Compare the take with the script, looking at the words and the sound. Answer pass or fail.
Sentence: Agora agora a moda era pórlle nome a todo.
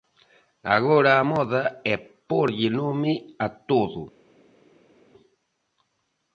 fail